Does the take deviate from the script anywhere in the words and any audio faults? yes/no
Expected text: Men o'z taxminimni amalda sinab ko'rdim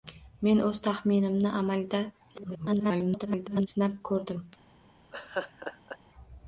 yes